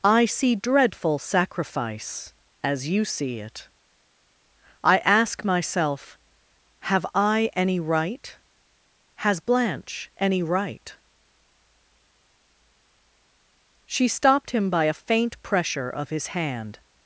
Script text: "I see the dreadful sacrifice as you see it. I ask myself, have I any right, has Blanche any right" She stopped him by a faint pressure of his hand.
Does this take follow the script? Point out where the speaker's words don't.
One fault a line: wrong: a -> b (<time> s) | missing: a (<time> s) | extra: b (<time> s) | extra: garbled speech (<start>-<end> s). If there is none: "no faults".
missing: the (0.6 s)